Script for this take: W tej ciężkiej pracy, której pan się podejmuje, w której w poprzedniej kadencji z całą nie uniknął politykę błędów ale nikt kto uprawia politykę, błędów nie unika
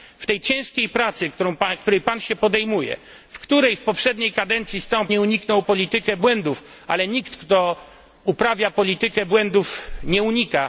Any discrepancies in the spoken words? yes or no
no